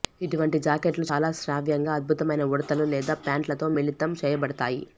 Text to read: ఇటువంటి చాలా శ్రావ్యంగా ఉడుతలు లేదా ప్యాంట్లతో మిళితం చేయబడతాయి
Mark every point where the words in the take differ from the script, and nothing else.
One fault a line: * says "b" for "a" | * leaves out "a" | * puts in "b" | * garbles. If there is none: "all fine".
* puts in "జాకెట్లు"
* puts in "అద్భుతమైన"